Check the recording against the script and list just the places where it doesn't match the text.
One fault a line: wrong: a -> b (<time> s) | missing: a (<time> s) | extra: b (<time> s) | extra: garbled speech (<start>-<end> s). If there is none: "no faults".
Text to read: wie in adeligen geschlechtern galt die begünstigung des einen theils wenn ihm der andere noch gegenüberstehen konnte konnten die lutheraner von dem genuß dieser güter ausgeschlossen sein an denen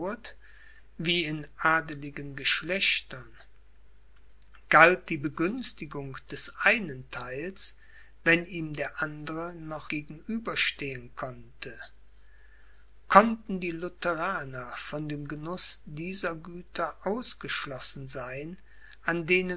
no faults